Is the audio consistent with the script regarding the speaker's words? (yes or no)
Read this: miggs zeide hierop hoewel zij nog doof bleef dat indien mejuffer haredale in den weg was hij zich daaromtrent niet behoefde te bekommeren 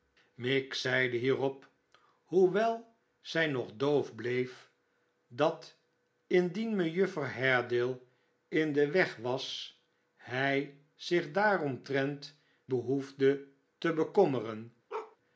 no